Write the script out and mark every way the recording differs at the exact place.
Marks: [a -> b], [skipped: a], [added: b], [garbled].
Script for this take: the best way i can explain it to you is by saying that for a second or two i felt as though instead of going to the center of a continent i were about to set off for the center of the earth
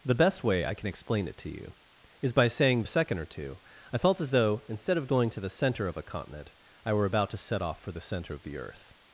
the best way i can explain it to you is by saying [skipped: that for] a second or two i felt as though instead of going to the center of a continent i were about to set off for the center of the earth